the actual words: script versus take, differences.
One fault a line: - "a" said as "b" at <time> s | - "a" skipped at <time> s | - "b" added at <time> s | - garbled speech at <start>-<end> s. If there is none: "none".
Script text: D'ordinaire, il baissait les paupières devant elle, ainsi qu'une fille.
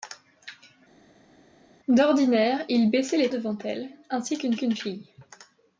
- "paupières" skipped at 3.3 s
- "qu'une" added at 4.5 s